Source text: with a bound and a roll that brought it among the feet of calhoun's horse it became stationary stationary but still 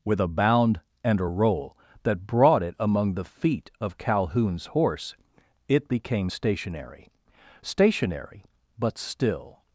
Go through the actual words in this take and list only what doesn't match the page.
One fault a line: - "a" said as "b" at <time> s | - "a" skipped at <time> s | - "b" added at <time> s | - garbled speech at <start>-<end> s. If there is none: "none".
none